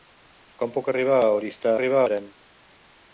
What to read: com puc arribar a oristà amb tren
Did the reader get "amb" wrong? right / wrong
wrong